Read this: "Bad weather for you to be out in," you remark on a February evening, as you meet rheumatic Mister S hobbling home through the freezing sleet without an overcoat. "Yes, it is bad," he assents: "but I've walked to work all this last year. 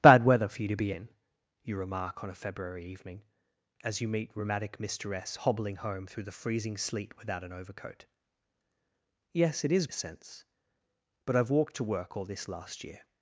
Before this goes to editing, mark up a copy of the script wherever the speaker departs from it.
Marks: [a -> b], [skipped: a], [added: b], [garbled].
"Bad weather for you to be [skipped: out] in," you remark on a February evening, as you meet rheumatic Mister S hobbling home through the freezing sleet without an overcoat. "Yes, it is [skipped: bad," he] assents: "but I've walked to work all this last year.